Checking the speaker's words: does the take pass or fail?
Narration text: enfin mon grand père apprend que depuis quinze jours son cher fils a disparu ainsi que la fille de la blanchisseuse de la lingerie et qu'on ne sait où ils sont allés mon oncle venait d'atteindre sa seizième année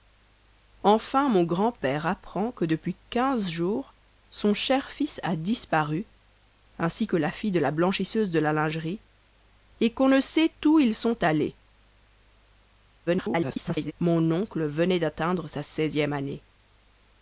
fail